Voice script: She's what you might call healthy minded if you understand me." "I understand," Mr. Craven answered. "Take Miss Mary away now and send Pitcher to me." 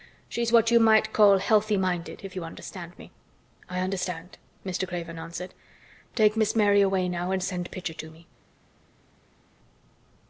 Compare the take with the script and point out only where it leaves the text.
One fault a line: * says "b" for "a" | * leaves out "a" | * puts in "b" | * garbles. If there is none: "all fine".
all fine